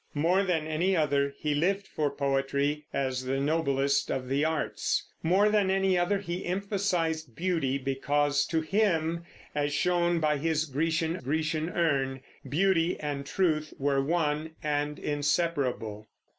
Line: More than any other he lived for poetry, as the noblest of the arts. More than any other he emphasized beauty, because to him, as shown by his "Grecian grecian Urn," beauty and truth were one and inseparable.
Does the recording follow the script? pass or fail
pass